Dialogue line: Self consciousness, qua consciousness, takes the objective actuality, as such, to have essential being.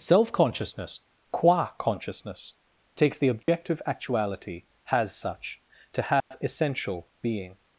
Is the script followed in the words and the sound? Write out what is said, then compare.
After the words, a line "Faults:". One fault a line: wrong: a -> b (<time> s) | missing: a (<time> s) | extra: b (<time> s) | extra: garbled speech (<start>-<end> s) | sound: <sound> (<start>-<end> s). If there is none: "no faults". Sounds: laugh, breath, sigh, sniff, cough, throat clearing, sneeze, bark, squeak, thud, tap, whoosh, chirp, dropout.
Self consciousness, qua consciousness, takes the objective actuality, has such, to have essential being.
Faults:
sound: dropout (3.4-3.5 s)
wrong: as -> has (4.8 s)
sound: dropout (6.2-6.3 s)